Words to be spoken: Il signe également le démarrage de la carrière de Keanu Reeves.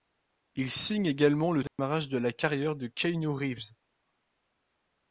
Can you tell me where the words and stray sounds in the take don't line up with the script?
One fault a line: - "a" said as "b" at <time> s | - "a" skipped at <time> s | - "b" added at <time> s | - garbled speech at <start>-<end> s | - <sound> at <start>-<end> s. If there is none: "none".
- dropout at 1.7-1.8 s